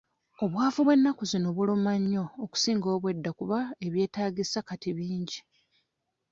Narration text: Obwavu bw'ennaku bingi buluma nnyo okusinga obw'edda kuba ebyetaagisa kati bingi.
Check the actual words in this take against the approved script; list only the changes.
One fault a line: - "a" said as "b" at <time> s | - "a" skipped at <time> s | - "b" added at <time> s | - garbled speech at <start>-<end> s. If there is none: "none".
- "bingi" said as "zino" at 1.3 s